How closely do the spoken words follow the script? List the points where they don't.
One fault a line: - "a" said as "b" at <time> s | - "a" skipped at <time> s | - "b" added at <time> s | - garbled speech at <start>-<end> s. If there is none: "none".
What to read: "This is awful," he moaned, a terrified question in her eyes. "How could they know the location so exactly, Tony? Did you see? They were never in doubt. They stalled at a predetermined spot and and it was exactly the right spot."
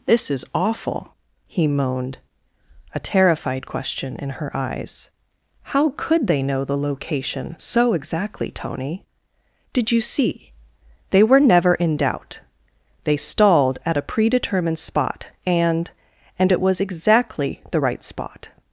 none